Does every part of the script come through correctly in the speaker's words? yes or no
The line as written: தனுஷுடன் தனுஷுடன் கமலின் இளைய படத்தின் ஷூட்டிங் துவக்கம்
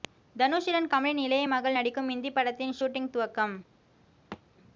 no